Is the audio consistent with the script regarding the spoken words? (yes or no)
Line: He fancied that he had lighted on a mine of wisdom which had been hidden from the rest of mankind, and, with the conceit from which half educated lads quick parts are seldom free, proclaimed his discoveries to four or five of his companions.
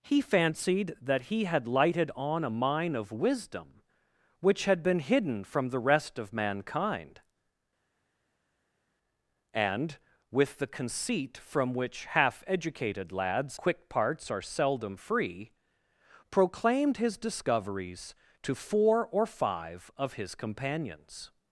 yes